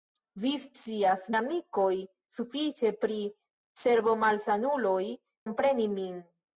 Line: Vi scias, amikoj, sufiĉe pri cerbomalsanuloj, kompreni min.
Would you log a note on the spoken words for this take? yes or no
no